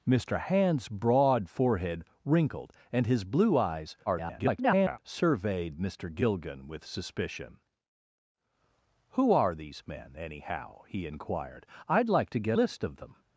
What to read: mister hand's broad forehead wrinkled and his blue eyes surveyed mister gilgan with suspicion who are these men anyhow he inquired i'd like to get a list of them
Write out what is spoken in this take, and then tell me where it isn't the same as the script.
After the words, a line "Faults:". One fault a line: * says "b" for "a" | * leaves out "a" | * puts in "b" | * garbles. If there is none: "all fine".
mister hand's broad forehead wrinkled and his blue eyes [garbled] surveyed mister gilgan with suspicion who are these men anyhow he inquired i'd like to get list of them
Faults:
* garbles
* leaves out "a"